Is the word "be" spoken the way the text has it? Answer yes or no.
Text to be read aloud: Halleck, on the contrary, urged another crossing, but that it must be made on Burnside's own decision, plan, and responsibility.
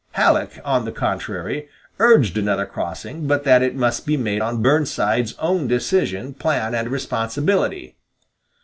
yes